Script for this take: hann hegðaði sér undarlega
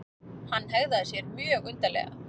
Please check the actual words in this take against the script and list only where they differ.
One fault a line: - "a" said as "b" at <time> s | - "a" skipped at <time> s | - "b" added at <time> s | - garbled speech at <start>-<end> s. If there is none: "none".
- "mjög" added at 1.4 s